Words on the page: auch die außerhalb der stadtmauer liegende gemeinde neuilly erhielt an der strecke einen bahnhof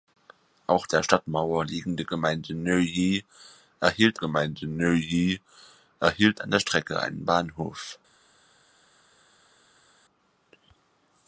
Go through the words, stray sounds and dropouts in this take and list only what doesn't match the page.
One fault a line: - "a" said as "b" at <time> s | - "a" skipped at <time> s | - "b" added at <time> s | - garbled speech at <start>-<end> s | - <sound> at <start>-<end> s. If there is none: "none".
- "die außerhalb" skipped at 0.9 s
- "gemeinde neuilly erhielt" added at 4.1 s